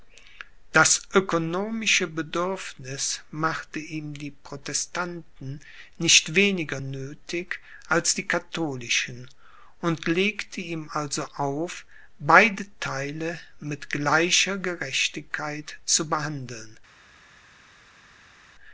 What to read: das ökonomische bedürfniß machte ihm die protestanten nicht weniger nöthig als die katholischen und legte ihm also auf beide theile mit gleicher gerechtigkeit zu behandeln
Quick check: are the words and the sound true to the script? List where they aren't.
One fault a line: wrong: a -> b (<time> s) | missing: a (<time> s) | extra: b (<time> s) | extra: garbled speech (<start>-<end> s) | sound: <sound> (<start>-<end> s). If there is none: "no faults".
no faults